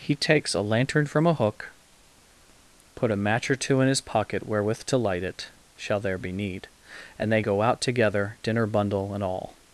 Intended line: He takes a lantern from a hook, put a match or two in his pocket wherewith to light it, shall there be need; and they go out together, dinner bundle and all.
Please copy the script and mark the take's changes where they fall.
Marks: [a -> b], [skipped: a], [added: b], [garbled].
He takes a lantern from a hook, put a match or two in his pocket wherewith to light it, shall there be need; and they go out together, dinner bundle and all.